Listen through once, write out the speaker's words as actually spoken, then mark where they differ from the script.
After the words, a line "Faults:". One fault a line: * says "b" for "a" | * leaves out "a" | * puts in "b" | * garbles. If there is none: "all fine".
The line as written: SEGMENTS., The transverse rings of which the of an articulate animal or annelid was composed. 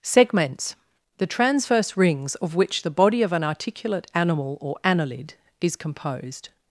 SEGMENTS., The transverse rings of which the body of an articulate animal or annelid is composed.
Faults:
* puts in "body"
* says "is" for "was"